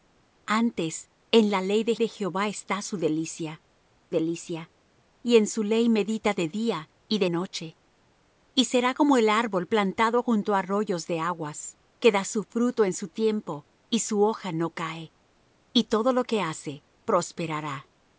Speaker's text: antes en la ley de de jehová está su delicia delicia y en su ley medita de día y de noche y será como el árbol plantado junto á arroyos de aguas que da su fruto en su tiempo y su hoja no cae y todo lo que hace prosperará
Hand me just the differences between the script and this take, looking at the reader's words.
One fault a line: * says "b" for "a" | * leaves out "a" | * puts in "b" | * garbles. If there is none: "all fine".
all fine